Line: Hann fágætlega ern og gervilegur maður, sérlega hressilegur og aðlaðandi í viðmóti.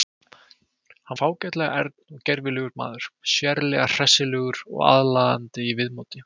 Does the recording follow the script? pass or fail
pass